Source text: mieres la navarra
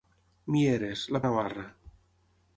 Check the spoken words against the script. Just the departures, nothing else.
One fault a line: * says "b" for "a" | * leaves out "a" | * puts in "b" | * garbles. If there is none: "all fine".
all fine